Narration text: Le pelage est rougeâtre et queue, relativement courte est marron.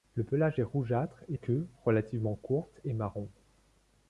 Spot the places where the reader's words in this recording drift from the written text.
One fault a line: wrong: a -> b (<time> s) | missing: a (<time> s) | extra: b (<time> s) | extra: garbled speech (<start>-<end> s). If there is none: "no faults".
no faults